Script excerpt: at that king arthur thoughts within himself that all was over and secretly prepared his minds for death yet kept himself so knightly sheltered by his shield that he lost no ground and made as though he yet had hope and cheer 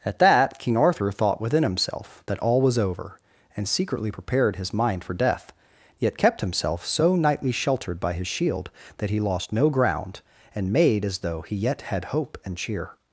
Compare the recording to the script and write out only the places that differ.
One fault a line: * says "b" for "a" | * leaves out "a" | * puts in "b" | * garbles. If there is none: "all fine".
* says "thought" for "thoughts"
* says "mind" for "minds"